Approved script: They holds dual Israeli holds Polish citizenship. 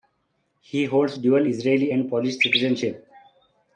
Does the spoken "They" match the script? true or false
false